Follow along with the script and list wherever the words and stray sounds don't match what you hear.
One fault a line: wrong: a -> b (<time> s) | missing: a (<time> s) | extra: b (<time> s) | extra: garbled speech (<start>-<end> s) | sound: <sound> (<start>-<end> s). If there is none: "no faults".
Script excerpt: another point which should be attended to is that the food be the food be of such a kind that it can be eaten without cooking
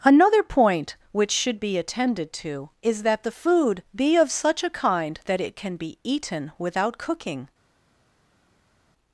missing: the food be (4.1 s)